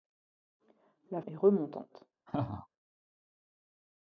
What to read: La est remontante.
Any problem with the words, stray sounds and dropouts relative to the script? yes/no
yes